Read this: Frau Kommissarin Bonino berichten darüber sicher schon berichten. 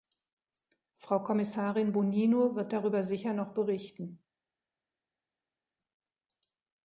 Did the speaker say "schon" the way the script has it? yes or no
no